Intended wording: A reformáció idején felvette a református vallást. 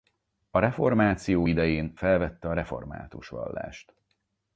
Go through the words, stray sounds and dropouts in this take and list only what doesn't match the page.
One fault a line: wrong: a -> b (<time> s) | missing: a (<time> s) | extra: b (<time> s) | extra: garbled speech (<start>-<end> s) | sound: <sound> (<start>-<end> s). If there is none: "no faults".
no faults